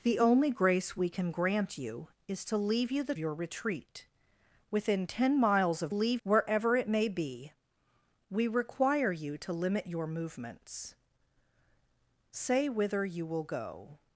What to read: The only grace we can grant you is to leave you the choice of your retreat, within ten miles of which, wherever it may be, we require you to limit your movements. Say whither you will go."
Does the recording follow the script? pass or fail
fail